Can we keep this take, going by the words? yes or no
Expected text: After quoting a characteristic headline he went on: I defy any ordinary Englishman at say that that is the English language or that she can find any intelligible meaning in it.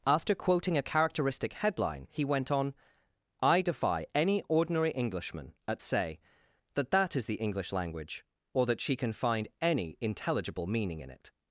yes